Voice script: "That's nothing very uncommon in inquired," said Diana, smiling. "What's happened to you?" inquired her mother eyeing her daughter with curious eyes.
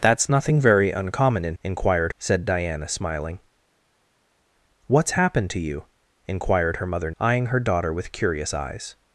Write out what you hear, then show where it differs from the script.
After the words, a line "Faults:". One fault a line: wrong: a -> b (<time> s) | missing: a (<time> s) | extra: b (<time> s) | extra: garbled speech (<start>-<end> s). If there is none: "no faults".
"That's nothing very uncommon in inquired," said Diana, smiling. "What's happened to you?" inquired her mother eyeing her daughter with curious eyes.
Faults:
no faults